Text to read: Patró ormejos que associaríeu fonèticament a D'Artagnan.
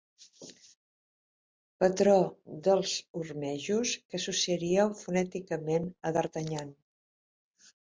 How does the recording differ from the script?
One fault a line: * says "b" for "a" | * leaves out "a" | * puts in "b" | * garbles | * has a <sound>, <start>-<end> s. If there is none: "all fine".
* puts in "dels"